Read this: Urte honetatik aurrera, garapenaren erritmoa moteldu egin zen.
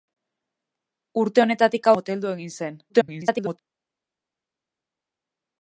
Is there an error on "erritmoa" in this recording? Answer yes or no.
yes